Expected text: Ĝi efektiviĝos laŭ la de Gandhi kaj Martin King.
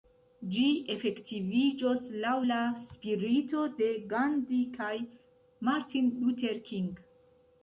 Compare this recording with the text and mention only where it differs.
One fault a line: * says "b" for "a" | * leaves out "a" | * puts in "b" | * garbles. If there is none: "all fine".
* puts in "spirito"
* puts in "Luther"